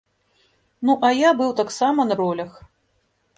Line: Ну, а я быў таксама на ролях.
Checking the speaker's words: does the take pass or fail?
pass